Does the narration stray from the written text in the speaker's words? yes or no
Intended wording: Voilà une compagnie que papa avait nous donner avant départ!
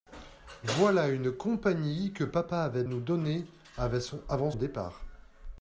no